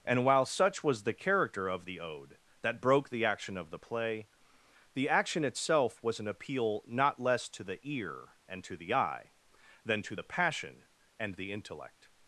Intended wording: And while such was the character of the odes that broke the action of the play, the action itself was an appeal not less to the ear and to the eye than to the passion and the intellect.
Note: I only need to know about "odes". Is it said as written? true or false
false